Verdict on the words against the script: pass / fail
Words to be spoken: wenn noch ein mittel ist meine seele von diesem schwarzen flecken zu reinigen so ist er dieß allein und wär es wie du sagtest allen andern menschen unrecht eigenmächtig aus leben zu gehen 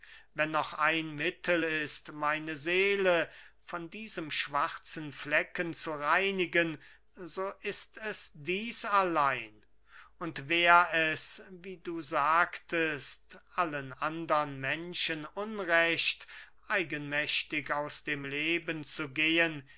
fail